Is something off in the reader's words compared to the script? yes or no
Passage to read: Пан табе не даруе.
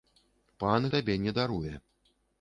no